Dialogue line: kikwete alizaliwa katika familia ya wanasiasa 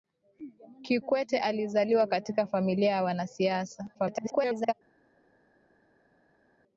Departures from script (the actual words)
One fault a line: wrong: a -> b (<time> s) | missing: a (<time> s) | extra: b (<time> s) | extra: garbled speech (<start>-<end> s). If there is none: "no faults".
extra: garbled speech (3.9-4.7 s)